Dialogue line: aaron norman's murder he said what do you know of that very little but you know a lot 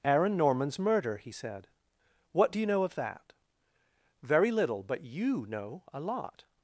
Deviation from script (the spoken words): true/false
false